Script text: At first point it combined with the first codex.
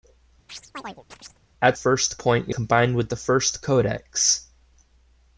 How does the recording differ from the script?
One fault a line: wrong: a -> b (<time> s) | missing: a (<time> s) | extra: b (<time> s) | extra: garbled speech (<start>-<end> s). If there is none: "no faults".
no faults